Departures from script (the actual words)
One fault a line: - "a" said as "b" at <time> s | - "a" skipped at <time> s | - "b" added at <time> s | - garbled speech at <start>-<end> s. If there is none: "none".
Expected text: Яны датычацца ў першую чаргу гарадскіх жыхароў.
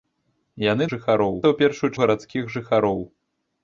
- "датычацца" said as "жыхароў" at 0.9 s
- "чаргу" skipped at 1.9 s